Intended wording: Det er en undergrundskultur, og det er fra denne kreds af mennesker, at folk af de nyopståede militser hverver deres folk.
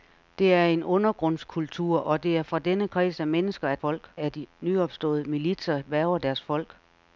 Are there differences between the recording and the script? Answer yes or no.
no